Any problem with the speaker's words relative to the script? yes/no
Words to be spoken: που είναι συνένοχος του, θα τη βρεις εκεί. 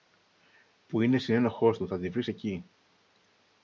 no